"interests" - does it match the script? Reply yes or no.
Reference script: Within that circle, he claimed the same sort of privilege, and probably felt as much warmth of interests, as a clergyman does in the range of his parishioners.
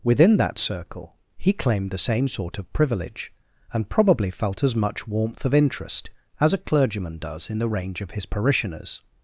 no